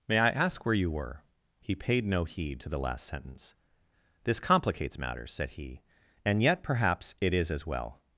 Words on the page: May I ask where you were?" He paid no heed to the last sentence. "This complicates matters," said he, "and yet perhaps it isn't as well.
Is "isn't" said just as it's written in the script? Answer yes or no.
no